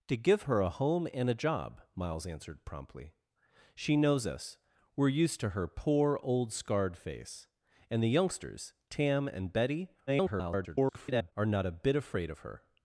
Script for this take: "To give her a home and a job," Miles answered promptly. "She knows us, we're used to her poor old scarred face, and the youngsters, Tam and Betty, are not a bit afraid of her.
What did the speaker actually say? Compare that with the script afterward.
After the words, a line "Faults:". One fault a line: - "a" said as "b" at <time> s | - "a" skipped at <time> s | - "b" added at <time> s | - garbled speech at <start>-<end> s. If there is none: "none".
"To give her a home and a job," Miles answered promptly. "She knows us, we're used to her poor old scarred face, and the youngsters, Tam and Betty, [garbled] are not a bit afraid of her.
Faults:
- garbled speech at 10.1-11.3 s